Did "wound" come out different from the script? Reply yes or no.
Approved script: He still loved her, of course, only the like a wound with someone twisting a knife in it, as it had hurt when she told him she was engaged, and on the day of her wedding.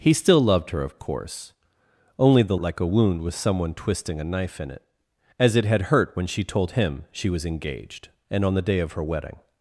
no